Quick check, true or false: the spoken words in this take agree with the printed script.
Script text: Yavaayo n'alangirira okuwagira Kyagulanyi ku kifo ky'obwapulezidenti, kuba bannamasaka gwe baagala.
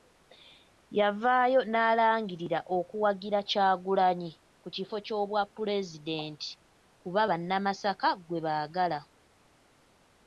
true